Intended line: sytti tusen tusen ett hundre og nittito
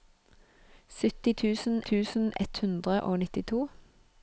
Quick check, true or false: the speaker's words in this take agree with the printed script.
true